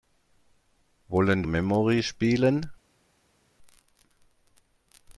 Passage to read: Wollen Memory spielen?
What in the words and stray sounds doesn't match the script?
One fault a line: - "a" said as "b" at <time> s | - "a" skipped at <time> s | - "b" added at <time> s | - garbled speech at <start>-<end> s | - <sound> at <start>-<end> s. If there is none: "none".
none